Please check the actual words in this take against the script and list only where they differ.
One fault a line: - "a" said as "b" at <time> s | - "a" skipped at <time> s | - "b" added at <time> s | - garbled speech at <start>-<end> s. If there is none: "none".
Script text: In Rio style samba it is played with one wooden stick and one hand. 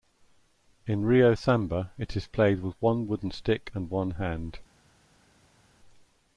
- "style" skipped at 1.4 s